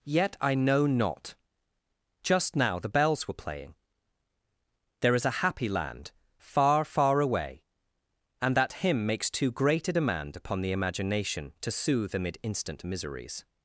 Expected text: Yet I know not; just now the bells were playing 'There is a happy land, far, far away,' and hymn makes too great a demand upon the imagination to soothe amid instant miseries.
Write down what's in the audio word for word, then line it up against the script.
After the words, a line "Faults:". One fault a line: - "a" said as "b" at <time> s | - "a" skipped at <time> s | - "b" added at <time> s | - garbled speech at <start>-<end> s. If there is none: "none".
Yet I know not; just now the bells were playing 'There is a happy land, far, far away,' and that hymn makes too great a demand upon the imagination to soothe amid instant miseries.
Faults:
- "that" added at 8.6 s